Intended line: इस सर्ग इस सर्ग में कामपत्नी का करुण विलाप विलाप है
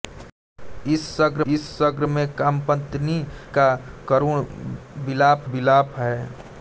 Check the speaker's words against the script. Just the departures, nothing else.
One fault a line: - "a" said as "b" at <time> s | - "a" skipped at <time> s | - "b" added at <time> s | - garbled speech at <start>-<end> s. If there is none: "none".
none